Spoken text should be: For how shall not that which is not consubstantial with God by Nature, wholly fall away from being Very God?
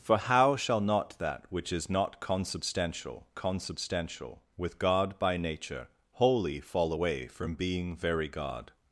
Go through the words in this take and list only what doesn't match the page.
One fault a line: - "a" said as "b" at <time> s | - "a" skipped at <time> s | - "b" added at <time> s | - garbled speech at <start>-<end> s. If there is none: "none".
- "consubstantial" added at 3.3 s